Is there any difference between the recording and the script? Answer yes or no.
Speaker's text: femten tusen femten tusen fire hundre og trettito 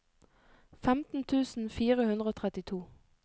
yes